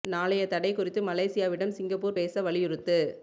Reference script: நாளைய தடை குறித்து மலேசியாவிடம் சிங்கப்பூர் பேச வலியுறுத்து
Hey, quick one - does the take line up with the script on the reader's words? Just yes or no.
yes